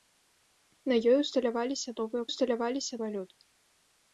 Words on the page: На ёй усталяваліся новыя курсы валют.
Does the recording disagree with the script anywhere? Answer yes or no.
yes